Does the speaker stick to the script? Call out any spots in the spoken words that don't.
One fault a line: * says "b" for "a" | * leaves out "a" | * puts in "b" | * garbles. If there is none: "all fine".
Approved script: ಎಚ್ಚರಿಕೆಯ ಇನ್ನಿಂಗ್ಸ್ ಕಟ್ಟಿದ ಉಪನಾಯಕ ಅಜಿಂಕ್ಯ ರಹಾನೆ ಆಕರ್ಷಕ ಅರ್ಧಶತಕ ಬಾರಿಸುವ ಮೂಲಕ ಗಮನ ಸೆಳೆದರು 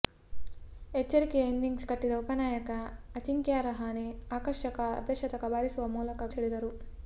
* leaves out "ಗಮನ"